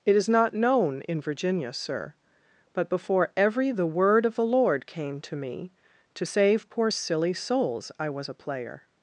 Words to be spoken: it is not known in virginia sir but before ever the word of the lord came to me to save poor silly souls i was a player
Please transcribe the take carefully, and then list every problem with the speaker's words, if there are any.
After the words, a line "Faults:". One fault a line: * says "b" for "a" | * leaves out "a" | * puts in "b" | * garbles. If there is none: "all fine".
it is not known in virginia sir but before every the word of the lord came to me to save poor silly souls i was a player
Faults:
* says "every" for "ever"